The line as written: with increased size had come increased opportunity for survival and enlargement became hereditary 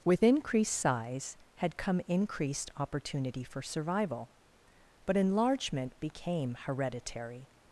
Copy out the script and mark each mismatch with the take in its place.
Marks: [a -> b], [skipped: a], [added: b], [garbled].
with increased size had come increased opportunity for survival [and -> but] enlargement became hereditary